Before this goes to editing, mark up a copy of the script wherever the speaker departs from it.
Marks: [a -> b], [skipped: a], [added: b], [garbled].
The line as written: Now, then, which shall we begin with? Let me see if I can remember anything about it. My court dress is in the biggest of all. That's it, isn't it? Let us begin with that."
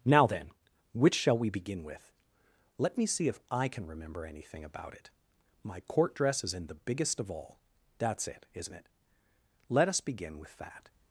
Now, then, which shall we begin with? Let me see if I can remember anything about it. My court dress is in the biggest of all. That's it, isn't it? Let us begin with that."